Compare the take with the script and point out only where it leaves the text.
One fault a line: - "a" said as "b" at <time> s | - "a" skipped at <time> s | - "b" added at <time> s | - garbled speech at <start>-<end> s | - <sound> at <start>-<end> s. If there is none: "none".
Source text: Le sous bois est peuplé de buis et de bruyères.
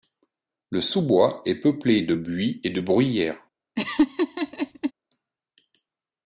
- laugh at 3.8-4.9 s